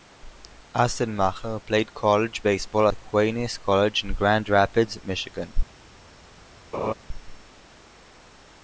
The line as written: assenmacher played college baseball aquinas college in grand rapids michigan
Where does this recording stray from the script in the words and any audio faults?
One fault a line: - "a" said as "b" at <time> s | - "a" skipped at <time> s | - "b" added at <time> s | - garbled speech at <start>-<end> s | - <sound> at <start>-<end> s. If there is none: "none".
- laugh at 6.7-6.9 s